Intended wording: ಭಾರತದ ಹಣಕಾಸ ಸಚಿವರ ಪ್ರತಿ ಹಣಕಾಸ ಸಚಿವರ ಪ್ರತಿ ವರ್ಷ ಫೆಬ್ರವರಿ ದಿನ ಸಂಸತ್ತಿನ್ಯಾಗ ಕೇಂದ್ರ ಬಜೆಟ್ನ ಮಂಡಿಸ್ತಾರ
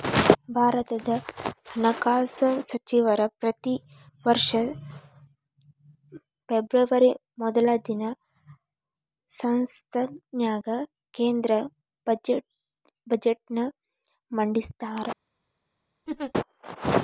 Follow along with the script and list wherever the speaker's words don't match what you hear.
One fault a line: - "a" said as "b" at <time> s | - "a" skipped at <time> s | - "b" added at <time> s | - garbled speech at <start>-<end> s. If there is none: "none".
- "ಹಣಕಾಸ ಸಚಿವರ ಪ್ರತಿ" skipped at 3.8 s
- "ಮೊದಲ" added at 7.4 s